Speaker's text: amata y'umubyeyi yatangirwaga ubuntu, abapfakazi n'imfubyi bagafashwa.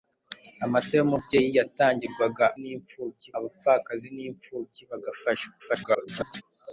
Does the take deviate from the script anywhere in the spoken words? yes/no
yes